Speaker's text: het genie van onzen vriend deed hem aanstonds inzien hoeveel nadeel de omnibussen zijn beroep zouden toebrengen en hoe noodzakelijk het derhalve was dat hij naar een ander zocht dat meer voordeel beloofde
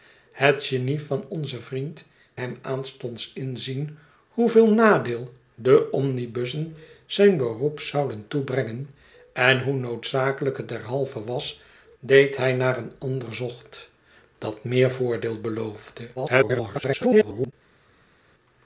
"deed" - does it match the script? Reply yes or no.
no